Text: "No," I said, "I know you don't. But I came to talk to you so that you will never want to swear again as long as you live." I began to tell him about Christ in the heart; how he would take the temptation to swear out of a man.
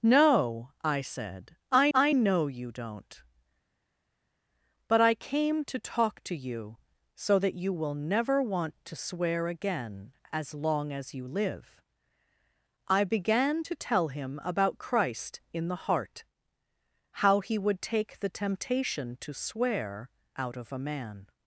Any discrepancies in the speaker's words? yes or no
yes